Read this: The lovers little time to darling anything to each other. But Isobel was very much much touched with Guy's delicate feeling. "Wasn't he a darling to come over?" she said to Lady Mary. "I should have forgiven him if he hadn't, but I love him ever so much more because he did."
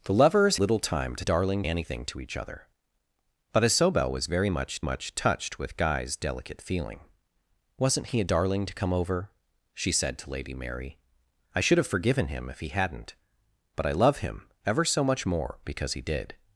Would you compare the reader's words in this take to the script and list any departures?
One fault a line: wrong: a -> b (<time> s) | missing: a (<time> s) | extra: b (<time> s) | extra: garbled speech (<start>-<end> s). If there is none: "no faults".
no faults